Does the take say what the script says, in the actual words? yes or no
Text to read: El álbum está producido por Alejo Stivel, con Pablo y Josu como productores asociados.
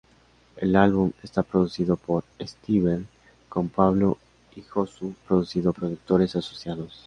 no